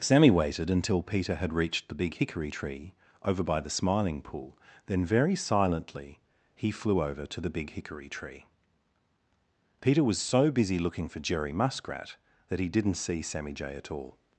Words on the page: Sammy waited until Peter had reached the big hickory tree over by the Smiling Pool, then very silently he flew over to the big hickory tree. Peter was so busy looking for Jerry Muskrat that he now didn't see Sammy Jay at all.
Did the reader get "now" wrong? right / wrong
wrong